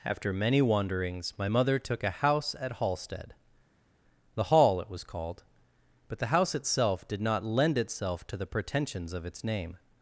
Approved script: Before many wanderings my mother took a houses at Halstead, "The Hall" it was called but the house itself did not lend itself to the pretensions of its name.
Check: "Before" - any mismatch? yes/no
yes